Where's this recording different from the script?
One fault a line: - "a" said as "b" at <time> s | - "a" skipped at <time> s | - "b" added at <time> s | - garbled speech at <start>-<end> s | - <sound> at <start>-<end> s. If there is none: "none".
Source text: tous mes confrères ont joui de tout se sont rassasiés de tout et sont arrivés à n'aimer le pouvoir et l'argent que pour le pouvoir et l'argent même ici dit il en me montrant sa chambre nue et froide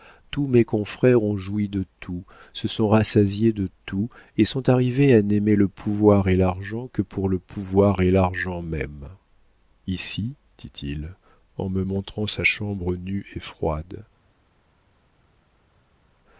none